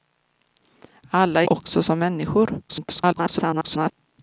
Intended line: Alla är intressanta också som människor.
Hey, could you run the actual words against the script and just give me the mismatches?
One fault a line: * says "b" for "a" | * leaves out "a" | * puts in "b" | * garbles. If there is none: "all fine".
* leaves out "intressanta"
* garbles